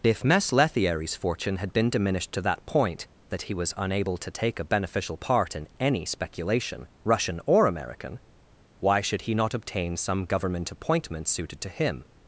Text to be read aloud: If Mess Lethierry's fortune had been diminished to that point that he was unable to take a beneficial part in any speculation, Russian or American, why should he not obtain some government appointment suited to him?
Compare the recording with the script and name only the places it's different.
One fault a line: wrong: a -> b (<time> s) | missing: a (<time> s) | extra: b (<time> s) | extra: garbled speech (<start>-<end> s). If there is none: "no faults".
no faults